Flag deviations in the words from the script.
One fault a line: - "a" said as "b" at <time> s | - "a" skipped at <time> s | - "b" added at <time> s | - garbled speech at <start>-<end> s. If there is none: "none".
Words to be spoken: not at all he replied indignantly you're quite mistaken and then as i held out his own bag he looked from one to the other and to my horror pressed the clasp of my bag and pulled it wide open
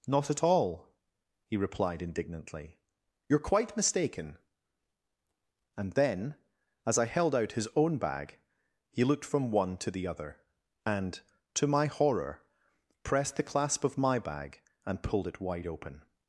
none